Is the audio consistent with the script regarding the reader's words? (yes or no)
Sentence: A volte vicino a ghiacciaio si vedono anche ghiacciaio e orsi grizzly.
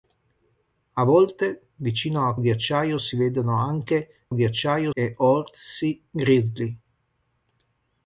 yes